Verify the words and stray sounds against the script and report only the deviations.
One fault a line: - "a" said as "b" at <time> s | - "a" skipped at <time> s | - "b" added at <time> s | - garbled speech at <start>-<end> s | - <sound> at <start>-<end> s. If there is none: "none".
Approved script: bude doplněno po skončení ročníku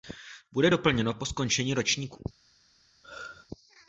- throat clearing at 3.0-3.5 s